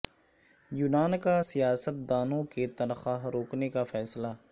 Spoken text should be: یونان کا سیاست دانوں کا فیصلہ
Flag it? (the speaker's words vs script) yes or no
yes